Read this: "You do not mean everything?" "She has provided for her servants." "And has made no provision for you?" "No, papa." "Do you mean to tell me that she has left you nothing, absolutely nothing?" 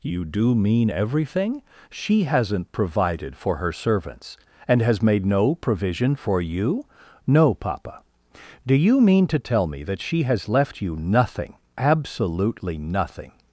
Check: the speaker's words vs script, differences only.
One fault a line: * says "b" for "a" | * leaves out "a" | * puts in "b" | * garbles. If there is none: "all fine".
* leaves out "not"
* says "hasn't" for "has"